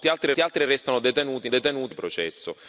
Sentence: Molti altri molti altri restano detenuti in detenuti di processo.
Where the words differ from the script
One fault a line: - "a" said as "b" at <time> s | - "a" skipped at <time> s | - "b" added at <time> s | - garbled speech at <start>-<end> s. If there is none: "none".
none